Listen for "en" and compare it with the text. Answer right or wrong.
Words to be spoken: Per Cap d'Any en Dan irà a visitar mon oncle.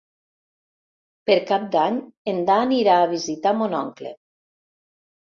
right